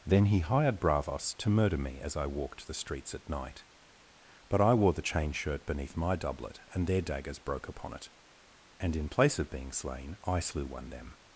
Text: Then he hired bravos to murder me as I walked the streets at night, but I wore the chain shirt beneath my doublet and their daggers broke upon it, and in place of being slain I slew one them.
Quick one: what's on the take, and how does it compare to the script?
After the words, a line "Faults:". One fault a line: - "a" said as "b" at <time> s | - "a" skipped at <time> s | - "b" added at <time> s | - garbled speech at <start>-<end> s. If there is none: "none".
Then he hired bravos to murder me as I walked the streets at night, but I wore the chain shirt beneath my doublet and their daggers broke upon it, and in place of being slain I slew one them.
Faults:
none